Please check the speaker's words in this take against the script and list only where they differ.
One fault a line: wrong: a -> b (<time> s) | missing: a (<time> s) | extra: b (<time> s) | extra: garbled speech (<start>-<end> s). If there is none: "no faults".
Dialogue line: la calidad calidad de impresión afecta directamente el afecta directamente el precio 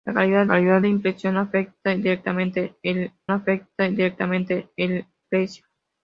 no faults